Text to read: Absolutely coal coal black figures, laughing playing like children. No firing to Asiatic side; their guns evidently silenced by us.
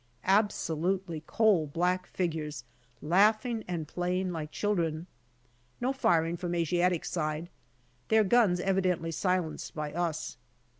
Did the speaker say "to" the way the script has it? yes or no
no